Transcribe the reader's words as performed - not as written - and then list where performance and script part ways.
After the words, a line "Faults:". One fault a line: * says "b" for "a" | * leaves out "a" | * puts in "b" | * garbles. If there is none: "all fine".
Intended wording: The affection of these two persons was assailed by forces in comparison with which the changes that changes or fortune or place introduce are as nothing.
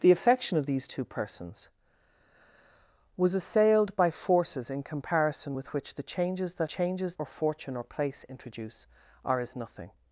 The affection of these two persons was assailed by forces in comparison with which the changes that changes or fortune or place introduce are as nothing.
Faults:
all fine